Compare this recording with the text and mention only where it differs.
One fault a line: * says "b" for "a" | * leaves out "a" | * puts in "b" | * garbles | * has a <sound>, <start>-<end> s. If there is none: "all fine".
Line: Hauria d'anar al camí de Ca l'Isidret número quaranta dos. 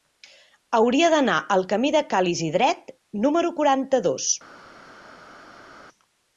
all fine